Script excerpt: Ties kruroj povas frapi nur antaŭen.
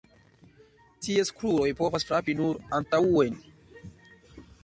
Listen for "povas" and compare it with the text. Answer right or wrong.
right